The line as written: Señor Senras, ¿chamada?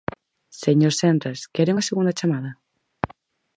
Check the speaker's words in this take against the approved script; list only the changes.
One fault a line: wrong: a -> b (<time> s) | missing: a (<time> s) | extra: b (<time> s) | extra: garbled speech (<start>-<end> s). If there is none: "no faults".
extra: quere unha segunda (1.5 s)